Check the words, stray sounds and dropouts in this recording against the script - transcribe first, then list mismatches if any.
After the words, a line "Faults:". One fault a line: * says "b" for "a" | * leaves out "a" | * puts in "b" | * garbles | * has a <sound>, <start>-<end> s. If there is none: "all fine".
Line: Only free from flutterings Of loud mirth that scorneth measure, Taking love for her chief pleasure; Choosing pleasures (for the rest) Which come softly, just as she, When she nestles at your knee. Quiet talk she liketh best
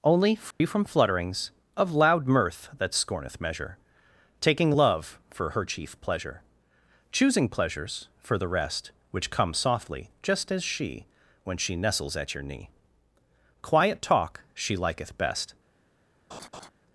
Only free from flutterings Of loud mirth that scorneth measure, Taking love for her chief pleasure; Choosing pleasures (for the rest) Which come softly, just as she, When she nestles at your knee. Quiet talk she liketh best
Faults:
* has a dropout, 0.5-0.6 s
* has a laugh, 16.3-16.7 s